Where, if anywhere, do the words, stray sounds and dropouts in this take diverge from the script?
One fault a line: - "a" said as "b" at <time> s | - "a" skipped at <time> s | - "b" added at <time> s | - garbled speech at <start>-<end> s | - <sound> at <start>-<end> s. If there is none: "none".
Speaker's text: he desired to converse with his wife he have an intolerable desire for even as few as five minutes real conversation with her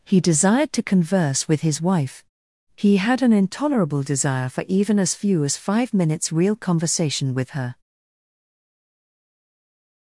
- "have" said as "had" at 3.0 s